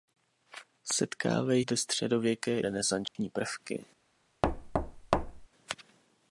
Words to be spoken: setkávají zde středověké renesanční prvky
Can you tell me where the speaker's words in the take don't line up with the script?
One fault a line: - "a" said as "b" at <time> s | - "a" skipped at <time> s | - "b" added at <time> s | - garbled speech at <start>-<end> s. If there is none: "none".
none